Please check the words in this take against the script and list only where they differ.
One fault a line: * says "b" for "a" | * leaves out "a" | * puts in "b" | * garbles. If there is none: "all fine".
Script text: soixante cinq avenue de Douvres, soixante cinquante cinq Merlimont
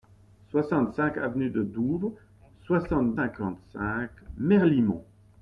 all fine